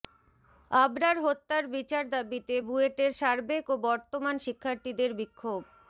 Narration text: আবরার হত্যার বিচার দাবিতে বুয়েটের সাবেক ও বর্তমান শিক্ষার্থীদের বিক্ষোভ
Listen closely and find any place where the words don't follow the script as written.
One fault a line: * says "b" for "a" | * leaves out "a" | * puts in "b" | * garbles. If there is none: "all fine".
all fine